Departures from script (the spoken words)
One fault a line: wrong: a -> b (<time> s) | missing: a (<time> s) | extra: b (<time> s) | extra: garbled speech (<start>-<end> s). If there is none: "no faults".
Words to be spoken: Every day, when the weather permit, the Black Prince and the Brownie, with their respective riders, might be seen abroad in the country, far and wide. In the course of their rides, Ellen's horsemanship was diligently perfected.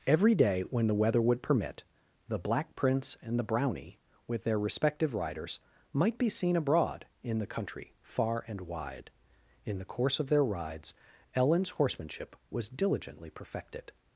extra: would (1.2 s)